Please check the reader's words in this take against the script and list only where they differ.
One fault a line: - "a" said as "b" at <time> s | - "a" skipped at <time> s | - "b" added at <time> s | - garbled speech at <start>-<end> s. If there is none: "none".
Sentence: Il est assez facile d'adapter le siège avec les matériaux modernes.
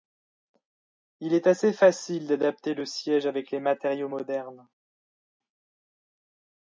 none